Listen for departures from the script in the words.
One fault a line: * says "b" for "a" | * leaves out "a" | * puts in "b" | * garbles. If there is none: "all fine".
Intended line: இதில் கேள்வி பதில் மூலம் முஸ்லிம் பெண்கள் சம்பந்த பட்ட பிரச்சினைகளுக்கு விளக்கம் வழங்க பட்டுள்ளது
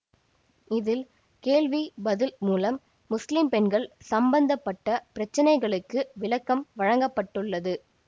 all fine